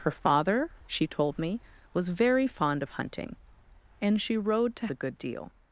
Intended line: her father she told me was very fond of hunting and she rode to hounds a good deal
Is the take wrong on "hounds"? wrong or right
wrong